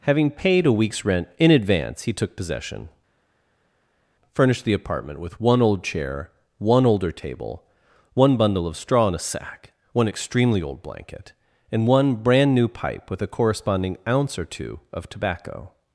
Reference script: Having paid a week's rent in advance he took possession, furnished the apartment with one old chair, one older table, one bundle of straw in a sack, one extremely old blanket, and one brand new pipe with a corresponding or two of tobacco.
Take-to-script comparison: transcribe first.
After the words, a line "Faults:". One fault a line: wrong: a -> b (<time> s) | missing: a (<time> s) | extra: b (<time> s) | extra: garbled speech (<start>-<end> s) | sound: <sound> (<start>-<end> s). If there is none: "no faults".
Having paid a week's rent in advance he took possession, furnished the apartment with one old chair, one older table, one bundle of straw in a sack, one extremely old blanket, and one brand new pipe with a corresponding ounce or two of tobacco.
Faults:
extra: ounce (14.1 s)